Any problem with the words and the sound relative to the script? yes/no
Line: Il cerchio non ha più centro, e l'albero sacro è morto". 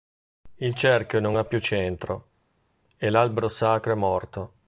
no